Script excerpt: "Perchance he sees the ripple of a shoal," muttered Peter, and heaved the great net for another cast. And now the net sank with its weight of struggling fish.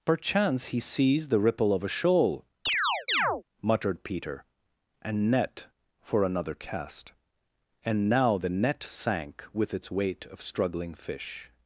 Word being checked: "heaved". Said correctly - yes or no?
no